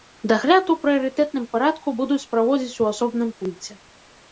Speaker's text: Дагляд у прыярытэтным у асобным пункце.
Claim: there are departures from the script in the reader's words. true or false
true